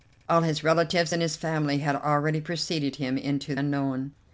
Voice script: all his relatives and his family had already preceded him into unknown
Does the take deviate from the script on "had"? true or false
false